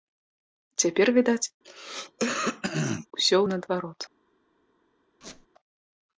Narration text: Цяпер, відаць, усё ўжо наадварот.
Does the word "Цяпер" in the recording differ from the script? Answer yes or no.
no